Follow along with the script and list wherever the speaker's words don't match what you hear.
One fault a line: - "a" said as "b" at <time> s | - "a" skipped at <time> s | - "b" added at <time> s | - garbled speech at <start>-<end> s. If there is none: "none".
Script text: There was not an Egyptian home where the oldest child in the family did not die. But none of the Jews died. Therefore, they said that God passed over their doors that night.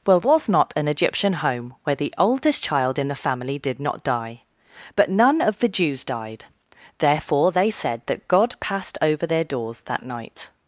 - "There" said as "Well" at 0.1 s